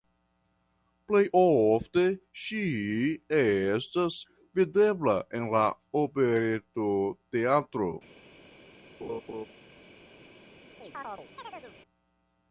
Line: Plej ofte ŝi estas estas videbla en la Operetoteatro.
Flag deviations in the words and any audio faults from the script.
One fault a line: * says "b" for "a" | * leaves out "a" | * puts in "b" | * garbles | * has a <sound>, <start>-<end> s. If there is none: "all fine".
* leaves out "estas"
* has a laugh, 9.0-9.5 s
* has a chirp, 10.8-11.8 s